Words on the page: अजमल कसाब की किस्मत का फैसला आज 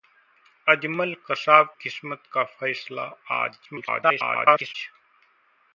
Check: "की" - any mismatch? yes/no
yes